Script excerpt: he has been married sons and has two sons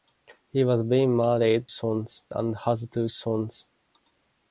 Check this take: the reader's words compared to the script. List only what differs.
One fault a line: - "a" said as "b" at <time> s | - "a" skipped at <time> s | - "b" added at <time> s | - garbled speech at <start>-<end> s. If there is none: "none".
none